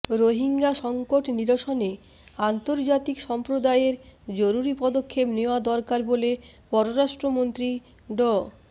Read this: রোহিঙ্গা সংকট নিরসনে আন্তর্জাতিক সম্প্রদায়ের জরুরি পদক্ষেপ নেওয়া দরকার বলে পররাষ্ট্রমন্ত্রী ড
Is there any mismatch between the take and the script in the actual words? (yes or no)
no